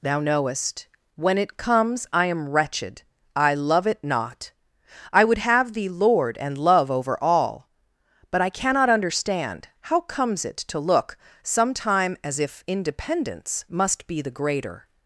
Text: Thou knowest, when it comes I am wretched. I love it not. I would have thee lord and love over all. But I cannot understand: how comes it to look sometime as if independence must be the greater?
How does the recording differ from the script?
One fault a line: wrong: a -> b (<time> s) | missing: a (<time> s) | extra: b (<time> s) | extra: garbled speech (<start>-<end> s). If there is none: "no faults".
no faults